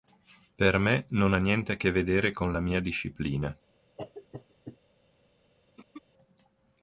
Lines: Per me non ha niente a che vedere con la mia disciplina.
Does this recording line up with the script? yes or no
yes